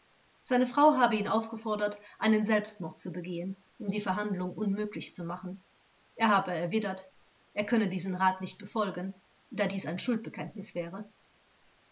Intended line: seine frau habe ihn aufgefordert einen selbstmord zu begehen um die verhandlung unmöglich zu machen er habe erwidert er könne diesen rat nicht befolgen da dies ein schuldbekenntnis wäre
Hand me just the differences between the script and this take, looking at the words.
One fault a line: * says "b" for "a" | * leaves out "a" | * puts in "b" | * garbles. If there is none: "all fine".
all fine